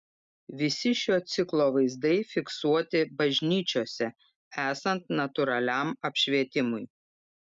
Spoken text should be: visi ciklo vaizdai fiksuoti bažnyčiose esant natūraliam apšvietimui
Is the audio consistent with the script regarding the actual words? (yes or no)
no